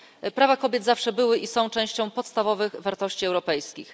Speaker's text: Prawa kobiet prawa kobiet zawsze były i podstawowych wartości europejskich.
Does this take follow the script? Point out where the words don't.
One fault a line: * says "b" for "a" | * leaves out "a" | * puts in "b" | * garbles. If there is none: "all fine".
* leaves out "prawa kobiet"
* puts in "są częścią"